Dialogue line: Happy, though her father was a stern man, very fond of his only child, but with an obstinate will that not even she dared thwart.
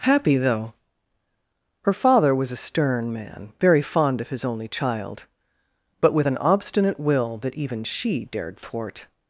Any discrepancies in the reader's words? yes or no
yes